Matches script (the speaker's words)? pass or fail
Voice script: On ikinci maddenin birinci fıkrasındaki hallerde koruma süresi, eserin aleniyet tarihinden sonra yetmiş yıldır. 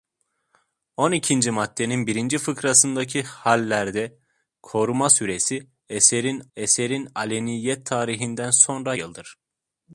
fail